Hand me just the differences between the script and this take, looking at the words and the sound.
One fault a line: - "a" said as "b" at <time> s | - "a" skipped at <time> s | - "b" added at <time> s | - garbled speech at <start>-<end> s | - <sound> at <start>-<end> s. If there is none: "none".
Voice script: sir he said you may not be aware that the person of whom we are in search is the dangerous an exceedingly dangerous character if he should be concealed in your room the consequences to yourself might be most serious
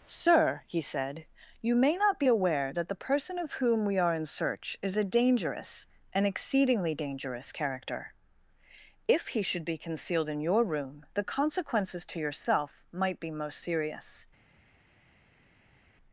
- "the" said as "a" at 5.0 s